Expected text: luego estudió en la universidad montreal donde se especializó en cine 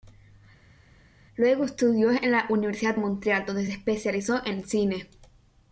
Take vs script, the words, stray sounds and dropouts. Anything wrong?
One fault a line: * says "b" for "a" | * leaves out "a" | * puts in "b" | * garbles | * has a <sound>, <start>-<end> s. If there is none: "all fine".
all fine